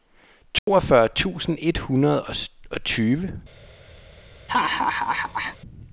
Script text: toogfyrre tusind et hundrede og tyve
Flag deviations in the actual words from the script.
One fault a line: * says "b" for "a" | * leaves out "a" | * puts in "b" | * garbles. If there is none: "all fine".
all fine